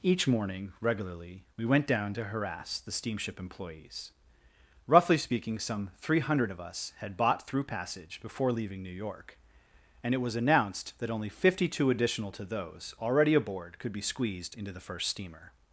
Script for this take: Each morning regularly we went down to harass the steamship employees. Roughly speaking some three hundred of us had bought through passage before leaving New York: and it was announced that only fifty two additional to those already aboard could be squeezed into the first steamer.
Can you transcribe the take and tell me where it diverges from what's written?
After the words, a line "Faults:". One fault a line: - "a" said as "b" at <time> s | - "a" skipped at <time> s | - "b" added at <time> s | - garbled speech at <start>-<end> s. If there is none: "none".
Each morning regularly we went down to harass the steamship employees. Roughly speaking some three hundred of us had bought through passage before leaving New York: and it was announced that only fifty two additional to those already aboard could be squeezed into the first steamer.
Faults:
none